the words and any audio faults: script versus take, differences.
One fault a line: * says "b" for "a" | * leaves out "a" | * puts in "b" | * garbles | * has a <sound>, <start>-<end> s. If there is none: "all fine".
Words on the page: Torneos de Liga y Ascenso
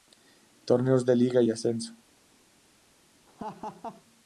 * has a laugh, 3.3-4.0 s